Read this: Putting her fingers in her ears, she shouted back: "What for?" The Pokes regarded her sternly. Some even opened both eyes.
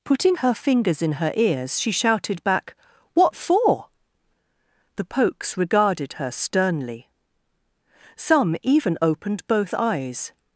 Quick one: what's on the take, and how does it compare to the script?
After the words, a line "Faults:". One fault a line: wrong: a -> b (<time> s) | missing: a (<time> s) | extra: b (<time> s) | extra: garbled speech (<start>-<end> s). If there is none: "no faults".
Putting her fingers in her ears, she shouted back: "What for?" The Pokes regarded her sternly. Some even opened both eyes.
Faults:
no faults